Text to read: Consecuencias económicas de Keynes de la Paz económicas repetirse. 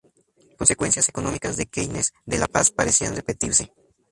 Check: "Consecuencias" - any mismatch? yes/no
no